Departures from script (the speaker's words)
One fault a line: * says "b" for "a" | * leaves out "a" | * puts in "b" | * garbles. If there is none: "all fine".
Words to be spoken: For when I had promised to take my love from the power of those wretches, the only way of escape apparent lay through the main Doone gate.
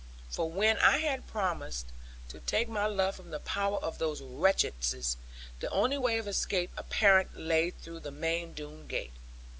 all fine